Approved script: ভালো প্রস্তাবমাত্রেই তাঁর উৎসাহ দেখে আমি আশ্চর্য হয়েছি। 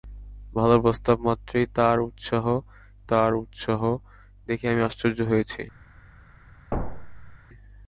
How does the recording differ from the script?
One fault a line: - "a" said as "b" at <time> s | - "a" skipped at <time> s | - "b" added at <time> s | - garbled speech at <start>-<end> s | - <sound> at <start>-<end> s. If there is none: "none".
- "তাঁর উৎসাহ" added at 3.1 s
- thud at 6.7-7.4 s